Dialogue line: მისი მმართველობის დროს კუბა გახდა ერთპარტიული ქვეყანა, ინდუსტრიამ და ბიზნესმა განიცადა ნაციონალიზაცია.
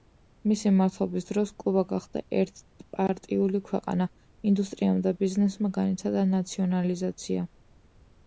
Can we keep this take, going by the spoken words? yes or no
yes